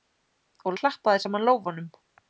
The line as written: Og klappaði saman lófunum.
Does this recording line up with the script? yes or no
yes